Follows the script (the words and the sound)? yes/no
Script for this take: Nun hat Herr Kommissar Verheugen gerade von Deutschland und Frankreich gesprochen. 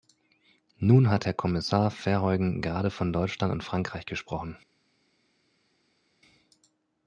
yes